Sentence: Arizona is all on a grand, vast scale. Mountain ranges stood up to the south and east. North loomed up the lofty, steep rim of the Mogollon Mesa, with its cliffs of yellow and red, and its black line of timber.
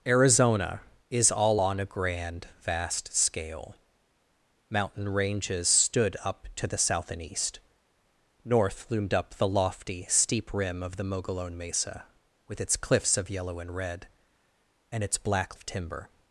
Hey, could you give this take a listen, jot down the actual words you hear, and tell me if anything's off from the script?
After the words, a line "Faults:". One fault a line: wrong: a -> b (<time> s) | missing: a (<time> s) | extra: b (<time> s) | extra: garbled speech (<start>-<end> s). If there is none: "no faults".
Arizona is all on a grand, vast scale. Mountain ranges stood up to the south and east. North loomed up the lofty, steep rim of the Mogollon Mesa, with its cliffs of yellow and red, and its black of timber.
Faults:
missing: line (15.6 s)